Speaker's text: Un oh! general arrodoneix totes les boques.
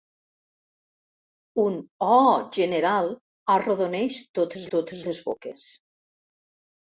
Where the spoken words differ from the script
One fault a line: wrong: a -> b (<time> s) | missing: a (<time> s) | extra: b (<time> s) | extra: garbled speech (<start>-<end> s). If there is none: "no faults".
extra: totes (4.8 s)